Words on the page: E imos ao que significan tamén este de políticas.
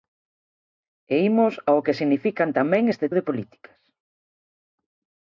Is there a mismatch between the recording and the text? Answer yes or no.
no